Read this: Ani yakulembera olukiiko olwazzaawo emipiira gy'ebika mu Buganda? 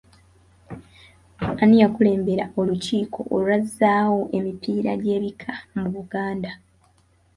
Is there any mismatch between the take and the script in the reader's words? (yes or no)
no